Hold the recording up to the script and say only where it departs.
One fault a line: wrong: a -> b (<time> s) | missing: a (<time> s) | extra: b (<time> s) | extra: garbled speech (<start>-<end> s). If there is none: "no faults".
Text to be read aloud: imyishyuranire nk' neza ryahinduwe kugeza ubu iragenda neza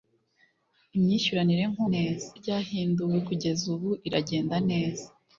no faults